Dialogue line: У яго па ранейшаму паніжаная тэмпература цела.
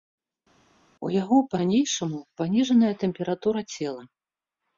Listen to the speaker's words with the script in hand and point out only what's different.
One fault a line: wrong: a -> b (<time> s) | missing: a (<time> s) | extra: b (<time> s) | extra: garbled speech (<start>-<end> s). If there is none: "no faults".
no faults